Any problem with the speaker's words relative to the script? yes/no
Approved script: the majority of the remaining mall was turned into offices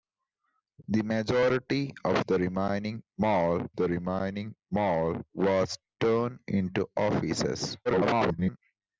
yes